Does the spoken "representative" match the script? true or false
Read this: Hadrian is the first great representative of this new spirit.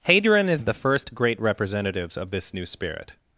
false